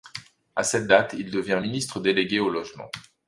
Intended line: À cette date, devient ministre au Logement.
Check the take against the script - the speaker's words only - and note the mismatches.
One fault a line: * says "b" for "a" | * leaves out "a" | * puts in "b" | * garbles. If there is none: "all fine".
* puts in "il"
* puts in "délégué"